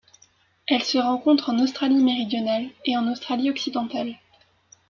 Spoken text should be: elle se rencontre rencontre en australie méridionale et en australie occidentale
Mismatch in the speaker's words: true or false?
true